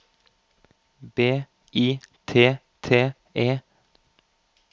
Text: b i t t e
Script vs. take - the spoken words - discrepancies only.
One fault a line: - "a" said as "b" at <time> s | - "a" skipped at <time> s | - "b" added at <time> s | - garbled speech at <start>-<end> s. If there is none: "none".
none